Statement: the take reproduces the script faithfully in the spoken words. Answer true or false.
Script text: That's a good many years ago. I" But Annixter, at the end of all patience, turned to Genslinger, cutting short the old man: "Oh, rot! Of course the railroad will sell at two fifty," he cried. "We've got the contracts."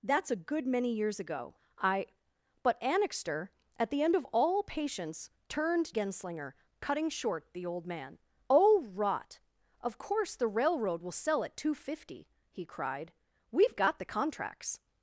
false